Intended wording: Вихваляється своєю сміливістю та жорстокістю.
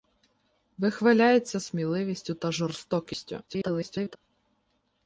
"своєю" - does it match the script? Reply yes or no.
no